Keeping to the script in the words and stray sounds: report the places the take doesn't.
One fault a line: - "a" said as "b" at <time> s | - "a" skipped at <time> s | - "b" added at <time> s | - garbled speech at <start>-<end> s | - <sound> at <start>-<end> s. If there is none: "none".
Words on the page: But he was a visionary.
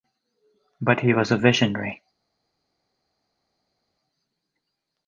none